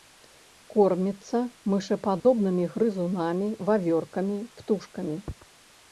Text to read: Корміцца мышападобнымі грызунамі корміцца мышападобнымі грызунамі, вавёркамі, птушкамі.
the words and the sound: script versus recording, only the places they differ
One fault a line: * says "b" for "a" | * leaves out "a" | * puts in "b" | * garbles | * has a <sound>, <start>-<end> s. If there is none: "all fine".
* has a dropout, 2.2-2.3 s
* leaves out "корміцца мышападобнымі грызунамі"